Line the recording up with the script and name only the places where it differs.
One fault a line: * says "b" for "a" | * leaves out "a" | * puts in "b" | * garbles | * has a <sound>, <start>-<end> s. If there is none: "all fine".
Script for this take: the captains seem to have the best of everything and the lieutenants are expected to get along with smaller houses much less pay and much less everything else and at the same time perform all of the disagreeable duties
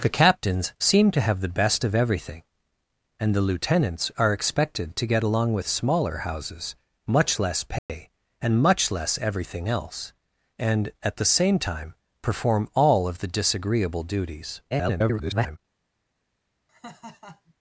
* has a dropout, 7.8-7.9 s
* garbles
* has a laugh, 16.7-17.5 s